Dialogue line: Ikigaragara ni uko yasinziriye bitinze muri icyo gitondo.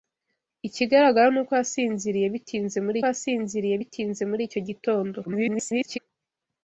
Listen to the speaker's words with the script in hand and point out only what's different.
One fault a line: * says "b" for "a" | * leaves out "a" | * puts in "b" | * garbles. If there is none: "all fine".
* puts in "yasinziriye bitinze muri"
* garbles